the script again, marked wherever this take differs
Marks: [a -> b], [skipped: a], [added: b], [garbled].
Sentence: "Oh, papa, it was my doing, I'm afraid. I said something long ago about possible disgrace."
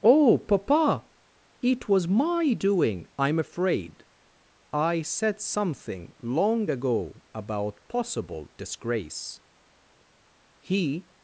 "Oh, papa, it was my doing, I'm afraid. I said something long ago about possible disgrace." [added: He]